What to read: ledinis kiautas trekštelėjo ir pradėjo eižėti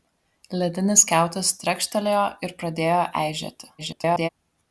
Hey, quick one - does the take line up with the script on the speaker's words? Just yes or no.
no